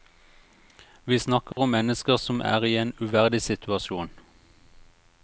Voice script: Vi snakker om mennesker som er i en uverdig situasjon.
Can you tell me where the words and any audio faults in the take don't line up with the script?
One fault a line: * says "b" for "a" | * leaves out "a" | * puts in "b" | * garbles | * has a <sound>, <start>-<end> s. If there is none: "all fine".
* has a dropout, 1.5-1.6 s